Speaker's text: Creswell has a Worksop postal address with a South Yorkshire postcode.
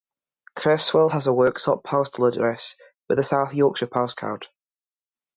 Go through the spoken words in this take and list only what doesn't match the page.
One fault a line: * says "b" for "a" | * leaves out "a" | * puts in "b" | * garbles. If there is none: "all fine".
all fine